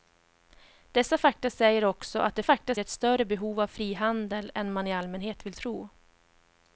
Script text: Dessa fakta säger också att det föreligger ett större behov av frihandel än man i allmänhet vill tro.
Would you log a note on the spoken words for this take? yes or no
yes